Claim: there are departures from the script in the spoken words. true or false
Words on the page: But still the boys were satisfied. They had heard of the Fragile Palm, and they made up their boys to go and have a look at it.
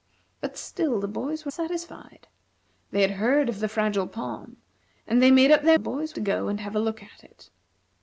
false